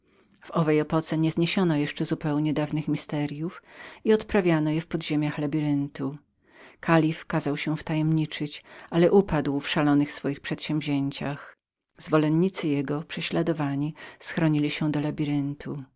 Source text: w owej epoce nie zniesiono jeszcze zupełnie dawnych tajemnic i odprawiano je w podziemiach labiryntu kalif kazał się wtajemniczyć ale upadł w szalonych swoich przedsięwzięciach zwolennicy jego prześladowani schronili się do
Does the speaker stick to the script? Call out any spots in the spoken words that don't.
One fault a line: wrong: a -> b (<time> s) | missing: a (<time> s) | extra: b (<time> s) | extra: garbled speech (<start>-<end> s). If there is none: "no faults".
no faults